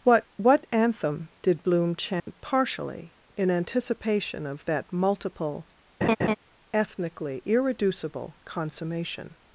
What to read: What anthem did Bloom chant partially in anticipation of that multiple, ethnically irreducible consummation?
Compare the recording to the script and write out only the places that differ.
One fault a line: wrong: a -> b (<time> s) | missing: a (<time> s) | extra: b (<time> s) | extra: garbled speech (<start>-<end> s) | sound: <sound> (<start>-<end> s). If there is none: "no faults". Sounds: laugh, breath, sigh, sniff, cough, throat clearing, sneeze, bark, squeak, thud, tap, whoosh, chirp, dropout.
extra: what (0.3 s)
sound: dropout (2.2-2.3 s)
sound: laugh (6.0-6.4 s)